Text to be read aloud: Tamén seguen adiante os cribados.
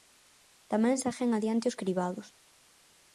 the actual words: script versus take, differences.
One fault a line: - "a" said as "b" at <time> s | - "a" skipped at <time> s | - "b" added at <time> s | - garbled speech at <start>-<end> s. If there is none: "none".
none